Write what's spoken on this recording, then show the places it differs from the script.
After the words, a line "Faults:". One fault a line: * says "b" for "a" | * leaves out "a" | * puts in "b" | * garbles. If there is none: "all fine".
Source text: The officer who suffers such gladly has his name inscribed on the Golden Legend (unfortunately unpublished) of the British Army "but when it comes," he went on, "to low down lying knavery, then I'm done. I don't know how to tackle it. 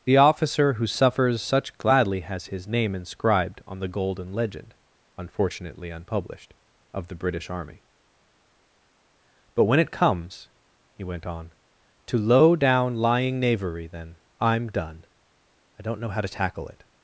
The officer who suffers such gladly has his name inscribed on the Golden Legend (unfortunately unpublished) of the British Army "but when it comes," he went on, "to low down lying knavery, then I'm done. I don't know how to tackle it.
Faults:
all fine